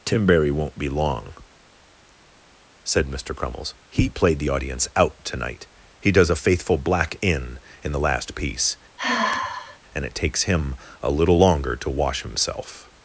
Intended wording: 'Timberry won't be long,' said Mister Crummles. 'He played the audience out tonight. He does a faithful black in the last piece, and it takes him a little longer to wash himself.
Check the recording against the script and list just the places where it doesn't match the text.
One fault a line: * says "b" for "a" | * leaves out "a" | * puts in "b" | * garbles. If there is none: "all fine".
* puts in "in"